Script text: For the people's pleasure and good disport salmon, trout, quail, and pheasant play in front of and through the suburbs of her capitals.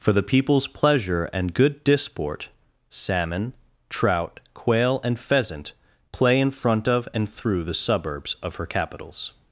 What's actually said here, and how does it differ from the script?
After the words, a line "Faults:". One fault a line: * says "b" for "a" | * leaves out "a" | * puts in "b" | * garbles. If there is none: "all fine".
For the people's pleasure and good disport salmon, trout, quail, and pheasant play in front of and through the suburbs of her capitals.
Faults:
all fine